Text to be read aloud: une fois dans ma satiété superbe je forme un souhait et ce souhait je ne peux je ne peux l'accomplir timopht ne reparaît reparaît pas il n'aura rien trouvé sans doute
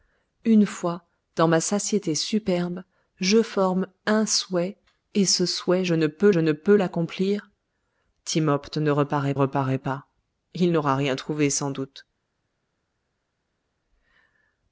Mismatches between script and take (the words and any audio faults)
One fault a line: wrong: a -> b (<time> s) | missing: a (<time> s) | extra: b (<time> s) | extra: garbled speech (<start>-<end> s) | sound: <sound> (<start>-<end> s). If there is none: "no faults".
no faults